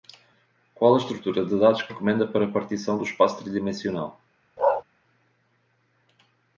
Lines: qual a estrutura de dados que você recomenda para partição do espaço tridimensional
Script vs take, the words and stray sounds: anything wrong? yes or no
yes